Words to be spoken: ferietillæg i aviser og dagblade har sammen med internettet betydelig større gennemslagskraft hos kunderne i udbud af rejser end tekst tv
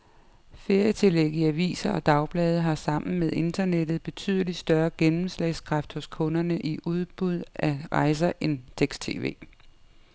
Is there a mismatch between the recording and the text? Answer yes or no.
no